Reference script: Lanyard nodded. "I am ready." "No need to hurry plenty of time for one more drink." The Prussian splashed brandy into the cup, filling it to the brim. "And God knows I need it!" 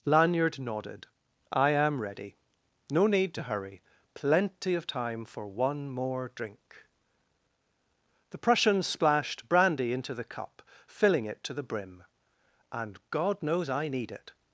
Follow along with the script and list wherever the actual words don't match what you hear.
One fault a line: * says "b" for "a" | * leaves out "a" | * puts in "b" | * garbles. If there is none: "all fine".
all fine